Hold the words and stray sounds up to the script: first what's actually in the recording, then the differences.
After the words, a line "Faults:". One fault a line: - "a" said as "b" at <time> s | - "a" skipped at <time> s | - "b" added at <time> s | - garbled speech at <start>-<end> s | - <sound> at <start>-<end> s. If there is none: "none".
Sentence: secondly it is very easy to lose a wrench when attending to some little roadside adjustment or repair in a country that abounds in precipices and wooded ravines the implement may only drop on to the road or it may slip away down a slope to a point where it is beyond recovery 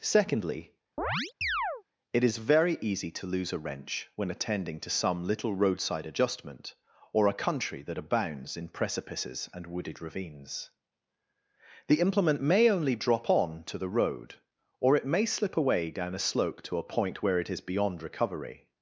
secondly it is very easy to lose a wrench when attending to some little roadside adjustment or a country that abounds in precipices and wooded ravines the implement may only drop on to the road or it may slip away down a slope to a point where it is beyond recovery
Faults:
- chirp at 1.0-1.8 s
- "repair in" skipped at 7.3 s